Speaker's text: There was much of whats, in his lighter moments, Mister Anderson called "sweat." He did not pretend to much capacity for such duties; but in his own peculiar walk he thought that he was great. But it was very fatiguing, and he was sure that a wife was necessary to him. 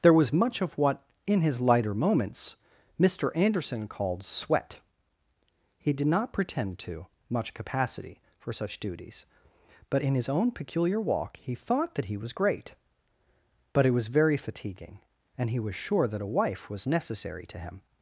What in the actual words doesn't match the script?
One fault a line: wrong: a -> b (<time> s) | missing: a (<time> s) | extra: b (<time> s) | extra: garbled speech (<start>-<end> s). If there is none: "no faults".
wrong: whats -> what (0.8 s)